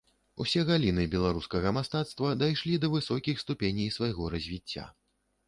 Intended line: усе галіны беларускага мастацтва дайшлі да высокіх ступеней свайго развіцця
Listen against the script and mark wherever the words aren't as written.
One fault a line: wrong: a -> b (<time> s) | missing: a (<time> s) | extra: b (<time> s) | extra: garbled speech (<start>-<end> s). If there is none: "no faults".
no faults